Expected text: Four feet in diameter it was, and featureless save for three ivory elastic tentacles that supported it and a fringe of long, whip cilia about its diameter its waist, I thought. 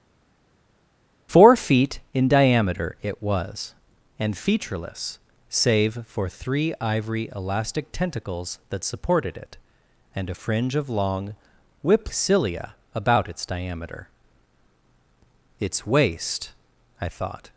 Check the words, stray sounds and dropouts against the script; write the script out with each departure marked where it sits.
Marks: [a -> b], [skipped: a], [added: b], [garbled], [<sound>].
Four feet in diameter it was, and featureless save for three ivory elastic tentacles that supported it and a fringe of long, whip cilia about its diameter its waist, I thought.